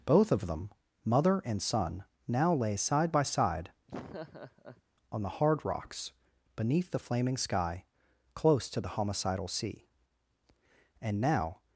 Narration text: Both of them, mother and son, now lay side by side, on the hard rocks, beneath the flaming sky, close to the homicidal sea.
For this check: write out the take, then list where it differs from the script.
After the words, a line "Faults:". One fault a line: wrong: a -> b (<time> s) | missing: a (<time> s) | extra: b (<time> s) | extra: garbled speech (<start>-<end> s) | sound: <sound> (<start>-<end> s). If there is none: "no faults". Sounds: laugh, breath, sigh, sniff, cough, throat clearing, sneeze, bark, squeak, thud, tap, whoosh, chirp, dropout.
Both of them, mother and son, now lay side by side, on the hard rocks, beneath the flaming sky, close to the homicidal sea. And now
Faults:
sound: laugh (3.9-4.8 s)
extra: And now (11.0 s)